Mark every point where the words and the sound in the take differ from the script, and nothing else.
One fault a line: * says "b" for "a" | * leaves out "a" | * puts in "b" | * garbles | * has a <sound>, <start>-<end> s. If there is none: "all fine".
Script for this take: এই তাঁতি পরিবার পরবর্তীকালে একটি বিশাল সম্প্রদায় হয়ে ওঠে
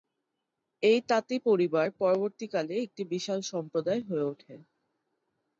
all fine